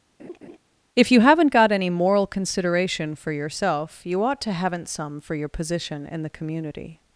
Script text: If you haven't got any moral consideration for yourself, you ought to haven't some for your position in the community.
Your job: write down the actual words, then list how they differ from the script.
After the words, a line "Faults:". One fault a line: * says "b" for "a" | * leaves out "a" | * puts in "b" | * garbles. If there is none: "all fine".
If you haven't got any moral consideration for yourself, you ought to haven't some for your position in the community.
Faults:
all fine